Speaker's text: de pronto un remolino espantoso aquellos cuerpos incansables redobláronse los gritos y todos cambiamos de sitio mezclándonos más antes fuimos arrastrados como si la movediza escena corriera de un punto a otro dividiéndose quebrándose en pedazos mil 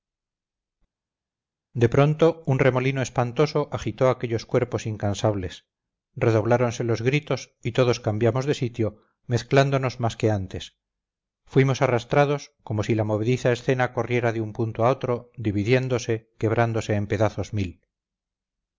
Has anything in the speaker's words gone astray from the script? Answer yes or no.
yes